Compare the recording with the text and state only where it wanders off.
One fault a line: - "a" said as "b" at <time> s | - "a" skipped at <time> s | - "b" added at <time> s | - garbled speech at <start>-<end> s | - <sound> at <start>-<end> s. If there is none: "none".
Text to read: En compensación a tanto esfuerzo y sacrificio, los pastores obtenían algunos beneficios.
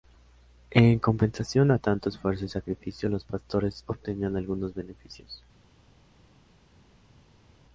none